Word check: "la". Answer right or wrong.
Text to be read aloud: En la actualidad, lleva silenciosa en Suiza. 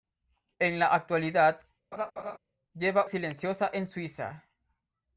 right